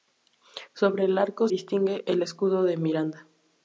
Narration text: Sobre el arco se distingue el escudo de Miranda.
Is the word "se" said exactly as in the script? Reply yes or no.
no